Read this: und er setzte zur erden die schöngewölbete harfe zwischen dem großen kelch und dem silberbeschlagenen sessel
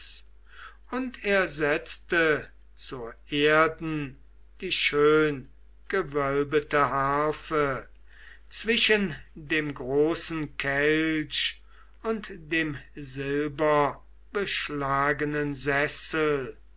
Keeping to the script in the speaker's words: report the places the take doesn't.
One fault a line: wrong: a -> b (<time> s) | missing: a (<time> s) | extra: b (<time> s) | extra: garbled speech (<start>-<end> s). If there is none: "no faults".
no faults